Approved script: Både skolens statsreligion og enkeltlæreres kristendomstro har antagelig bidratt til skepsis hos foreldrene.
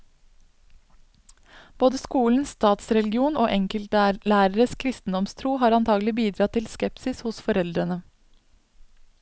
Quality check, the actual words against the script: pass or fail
pass